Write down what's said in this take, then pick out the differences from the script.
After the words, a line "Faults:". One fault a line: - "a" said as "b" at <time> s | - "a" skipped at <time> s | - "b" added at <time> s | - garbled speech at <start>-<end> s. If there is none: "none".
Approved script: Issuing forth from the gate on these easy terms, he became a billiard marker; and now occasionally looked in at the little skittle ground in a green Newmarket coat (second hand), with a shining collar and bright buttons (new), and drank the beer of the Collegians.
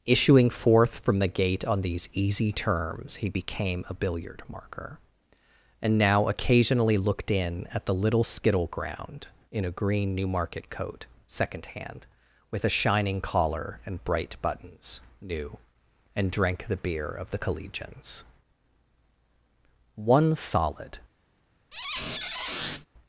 Issuing forth from the gate on these easy terms, he became a billiard marker; and now occasionally looked in at the little skittle ground in a green Newmarket coat (second hand), with a shining collar and bright buttons (new), and drank the beer of the Collegians. One solid
Faults:
- "One solid" added at 19.9 s